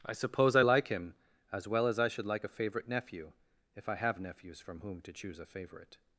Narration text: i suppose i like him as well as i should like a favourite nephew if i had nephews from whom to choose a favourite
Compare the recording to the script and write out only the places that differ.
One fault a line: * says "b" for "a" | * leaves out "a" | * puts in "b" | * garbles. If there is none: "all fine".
* says "have" for "had"